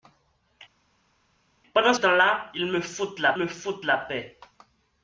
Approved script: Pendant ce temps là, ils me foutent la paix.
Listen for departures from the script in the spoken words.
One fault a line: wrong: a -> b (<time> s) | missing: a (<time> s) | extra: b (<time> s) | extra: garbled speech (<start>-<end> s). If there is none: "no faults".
missing: ce (1.9 s)
extra: me foutent la (3.3 s)